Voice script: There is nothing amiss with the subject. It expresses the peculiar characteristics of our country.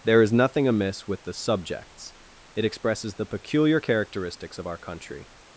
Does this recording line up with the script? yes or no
no